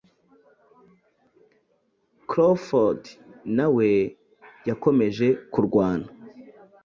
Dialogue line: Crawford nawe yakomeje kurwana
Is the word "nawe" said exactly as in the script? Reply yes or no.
yes